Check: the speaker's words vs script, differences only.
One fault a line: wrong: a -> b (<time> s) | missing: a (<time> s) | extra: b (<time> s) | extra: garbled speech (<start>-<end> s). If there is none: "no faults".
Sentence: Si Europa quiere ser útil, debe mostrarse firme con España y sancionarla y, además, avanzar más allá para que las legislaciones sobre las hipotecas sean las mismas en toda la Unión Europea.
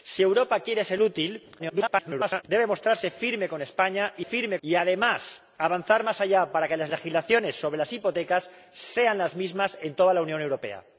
extra: garbled speech (1.6-2.4 s)
wrong: sancionarla -> firme (4.2 s)